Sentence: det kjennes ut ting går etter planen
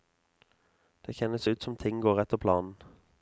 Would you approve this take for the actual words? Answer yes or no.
no